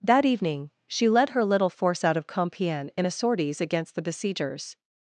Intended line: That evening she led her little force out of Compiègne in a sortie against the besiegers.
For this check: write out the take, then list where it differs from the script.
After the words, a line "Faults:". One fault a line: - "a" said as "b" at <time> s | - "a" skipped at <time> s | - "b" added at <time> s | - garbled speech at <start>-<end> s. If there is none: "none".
That evening she led her little force out of Compiègne in a sorties against the besiegers.
Faults:
- "sortie" said as "sorties" at 3.1 s